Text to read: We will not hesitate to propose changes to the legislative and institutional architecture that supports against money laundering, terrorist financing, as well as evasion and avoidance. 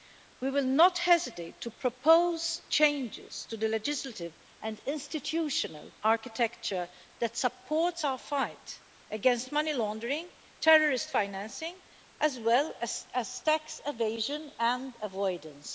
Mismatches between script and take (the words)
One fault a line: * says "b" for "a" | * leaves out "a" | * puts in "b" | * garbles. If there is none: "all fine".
* puts in "our fight"
* puts in "tax"